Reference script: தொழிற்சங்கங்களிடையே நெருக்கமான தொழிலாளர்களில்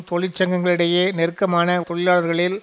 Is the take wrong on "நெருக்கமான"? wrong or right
right